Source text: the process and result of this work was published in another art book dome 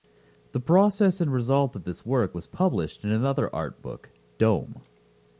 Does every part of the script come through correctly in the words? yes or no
yes